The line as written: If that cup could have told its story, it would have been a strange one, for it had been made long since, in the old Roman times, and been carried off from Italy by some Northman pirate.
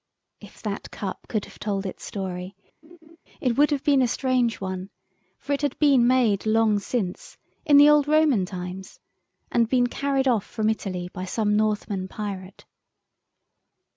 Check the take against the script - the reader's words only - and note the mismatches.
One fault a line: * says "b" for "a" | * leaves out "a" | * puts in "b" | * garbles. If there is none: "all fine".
all fine